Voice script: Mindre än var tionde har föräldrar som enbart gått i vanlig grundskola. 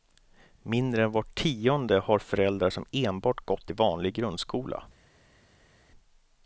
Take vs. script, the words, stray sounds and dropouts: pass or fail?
pass